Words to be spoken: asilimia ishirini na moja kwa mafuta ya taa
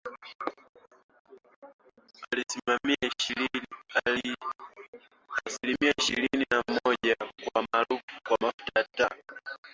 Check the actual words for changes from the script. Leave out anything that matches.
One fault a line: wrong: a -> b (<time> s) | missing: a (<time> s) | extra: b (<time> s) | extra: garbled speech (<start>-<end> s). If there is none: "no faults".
no faults